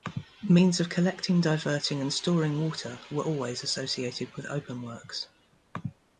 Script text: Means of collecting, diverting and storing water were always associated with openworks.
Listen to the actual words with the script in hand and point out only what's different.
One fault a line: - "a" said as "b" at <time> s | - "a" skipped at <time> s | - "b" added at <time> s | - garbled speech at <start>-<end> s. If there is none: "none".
none